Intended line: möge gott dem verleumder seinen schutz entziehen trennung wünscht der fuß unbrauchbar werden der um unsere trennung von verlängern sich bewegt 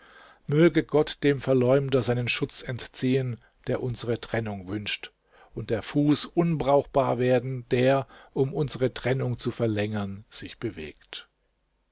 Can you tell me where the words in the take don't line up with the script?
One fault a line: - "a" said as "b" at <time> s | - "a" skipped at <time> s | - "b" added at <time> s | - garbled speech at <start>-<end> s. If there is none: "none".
- "der unsere" added at 3.7 s
- "und" added at 5.5 s
- "von" said as "zu" at 9.4 s